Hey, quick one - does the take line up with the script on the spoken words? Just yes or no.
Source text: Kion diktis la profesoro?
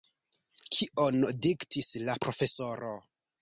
yes